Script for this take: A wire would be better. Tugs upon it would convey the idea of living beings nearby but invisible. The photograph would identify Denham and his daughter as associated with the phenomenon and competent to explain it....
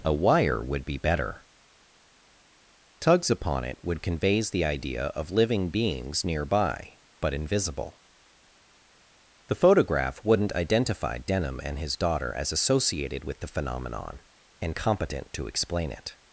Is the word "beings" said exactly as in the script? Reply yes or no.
yes